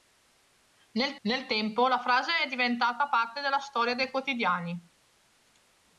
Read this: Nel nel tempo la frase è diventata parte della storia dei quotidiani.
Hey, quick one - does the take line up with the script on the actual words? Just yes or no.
yes